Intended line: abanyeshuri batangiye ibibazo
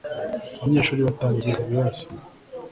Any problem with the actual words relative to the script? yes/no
no